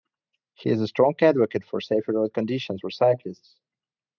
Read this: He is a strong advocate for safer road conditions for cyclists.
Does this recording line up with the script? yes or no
yes